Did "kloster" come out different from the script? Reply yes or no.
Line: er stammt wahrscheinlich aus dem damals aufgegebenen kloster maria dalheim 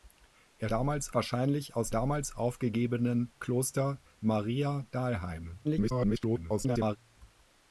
no